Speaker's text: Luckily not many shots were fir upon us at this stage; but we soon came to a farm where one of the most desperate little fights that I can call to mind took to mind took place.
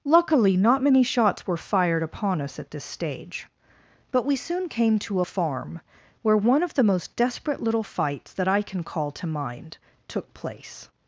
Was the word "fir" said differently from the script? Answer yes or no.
yes